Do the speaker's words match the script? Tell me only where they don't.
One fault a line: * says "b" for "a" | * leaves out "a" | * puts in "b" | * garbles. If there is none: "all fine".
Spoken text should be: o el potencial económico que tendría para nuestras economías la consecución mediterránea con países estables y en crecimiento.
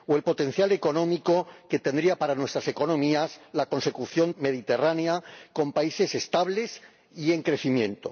all fine